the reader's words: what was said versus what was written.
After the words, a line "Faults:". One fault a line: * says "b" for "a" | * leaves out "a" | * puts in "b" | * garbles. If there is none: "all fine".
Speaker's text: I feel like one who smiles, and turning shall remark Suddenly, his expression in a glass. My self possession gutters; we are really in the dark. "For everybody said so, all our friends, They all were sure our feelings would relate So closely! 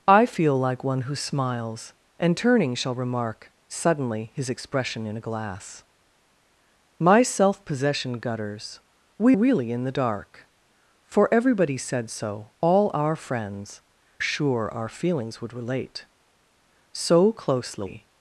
I feel like one who smiles, and turning shall remark Suddenly, his expression in a glass. My self possession gutters; we really in the dark. "For everybody said so, all our friends, Sure our feelings would relate So closely!
Faults:
* leaves out "are"
* leaves out "They all were"